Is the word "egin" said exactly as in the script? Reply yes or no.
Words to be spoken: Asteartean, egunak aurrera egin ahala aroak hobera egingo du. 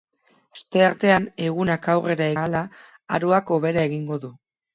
no